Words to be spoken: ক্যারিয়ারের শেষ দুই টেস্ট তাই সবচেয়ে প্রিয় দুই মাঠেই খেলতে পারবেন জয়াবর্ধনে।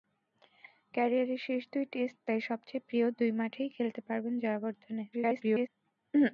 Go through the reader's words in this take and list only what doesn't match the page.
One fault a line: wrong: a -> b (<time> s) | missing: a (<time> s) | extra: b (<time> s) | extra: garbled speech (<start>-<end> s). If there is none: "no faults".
extra: garbled speech (5.1-5.7 s)